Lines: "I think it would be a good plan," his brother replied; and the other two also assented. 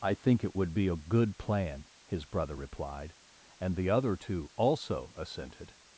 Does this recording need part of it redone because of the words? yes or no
no